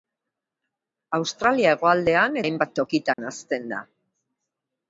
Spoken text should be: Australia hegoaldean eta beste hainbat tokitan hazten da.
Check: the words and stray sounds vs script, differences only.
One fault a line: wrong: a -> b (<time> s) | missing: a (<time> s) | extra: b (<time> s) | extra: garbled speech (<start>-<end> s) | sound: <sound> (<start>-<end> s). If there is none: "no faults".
missing: eta beste (2.4 s)
sound: dropout (3.1-3.2 s)